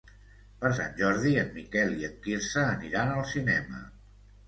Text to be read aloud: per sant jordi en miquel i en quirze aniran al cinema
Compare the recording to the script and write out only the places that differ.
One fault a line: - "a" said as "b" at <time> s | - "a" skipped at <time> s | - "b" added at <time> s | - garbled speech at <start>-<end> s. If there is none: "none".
none